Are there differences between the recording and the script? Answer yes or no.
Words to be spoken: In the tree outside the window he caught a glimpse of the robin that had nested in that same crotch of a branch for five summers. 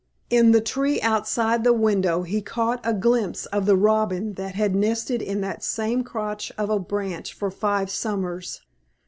no